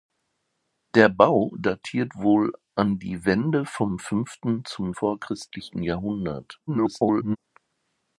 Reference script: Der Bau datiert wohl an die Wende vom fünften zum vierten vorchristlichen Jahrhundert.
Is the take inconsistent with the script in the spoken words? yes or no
yes